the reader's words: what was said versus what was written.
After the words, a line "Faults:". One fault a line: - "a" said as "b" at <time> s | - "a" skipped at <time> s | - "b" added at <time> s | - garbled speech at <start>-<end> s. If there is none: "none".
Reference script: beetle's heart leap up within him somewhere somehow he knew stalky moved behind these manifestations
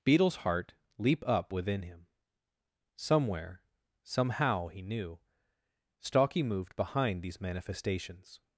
beetle's heart leap up within him somewhere somehow he knew stalky moved behind these manifestations
Faults:
none